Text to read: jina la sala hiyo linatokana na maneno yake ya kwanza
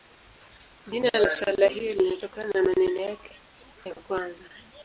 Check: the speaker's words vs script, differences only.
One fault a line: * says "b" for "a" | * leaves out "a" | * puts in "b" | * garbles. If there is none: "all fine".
all fine